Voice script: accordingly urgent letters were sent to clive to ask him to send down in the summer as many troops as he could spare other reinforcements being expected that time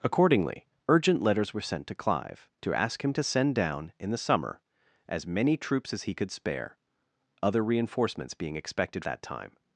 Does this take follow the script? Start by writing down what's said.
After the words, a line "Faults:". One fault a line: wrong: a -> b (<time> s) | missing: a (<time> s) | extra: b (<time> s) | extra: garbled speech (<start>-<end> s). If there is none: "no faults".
accordingly urgent letters were sent to clive to ask him to send down in the summer as many troops as he could spare other reinforcements being expected that time
Faults:
no faults